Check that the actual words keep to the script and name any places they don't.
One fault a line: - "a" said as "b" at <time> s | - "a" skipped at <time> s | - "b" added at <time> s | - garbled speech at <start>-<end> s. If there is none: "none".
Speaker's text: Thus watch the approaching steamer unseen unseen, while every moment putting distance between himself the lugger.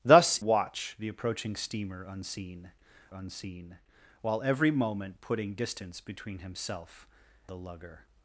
none